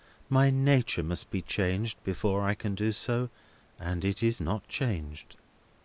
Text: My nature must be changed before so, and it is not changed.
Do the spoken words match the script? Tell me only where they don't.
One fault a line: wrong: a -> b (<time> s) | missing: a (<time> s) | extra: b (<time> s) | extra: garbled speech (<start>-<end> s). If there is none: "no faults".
extra: I can do (2.4 s)